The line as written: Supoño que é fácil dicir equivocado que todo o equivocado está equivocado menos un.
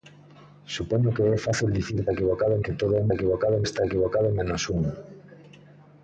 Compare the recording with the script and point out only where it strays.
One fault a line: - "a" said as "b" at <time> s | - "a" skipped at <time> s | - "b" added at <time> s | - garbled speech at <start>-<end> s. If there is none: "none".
none